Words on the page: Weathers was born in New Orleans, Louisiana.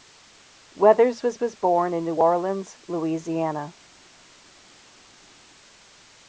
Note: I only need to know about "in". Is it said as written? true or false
true